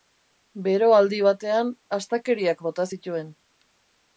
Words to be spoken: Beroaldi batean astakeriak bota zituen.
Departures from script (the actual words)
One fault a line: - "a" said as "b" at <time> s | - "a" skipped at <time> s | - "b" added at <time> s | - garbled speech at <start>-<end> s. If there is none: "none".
none